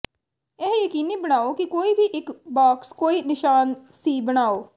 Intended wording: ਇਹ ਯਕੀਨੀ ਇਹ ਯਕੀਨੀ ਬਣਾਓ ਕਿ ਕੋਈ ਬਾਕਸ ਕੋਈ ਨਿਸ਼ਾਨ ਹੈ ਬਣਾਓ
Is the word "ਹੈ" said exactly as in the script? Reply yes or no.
no